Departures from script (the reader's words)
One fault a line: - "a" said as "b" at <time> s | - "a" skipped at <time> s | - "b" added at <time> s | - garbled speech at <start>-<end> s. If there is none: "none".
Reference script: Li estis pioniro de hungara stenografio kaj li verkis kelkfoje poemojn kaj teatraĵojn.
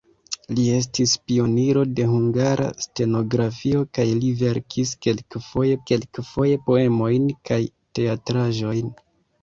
- "kelkfoje" added at 5.9 s